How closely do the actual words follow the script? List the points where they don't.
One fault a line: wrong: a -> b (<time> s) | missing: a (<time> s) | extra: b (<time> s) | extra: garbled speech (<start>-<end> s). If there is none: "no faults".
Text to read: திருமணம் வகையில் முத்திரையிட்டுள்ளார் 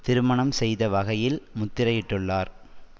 extra: செய்த (0.5 s)